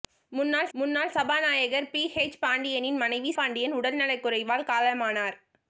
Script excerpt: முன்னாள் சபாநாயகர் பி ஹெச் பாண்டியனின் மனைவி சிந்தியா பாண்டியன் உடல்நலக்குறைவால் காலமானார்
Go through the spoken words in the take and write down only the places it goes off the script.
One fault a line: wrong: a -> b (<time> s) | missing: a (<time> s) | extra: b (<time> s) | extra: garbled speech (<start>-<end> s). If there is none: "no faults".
extra: முன்னாள் (0.7 s)
missing: சிந்தியா (3.3 s)